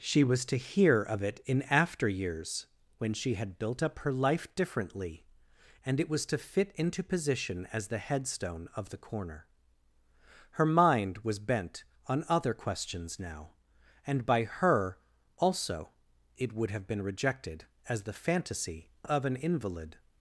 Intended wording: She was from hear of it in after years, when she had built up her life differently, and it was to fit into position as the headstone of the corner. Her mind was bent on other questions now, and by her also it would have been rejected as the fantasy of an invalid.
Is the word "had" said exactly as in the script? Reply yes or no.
yes